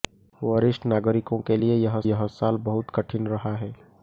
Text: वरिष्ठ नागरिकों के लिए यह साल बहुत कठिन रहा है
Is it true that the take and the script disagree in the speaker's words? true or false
true